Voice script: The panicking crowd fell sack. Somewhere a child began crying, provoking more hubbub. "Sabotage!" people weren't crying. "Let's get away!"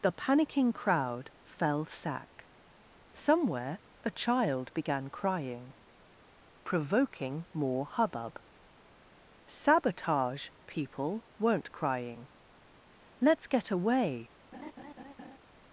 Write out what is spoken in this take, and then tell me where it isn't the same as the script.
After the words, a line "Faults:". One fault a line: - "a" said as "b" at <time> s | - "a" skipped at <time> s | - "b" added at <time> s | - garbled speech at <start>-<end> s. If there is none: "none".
The panicking crowd fell sack. Somewhere a child began crying, provoking more hubbub. "Sabotage!" people weren't crying. "Let's get away!"
Faults:
none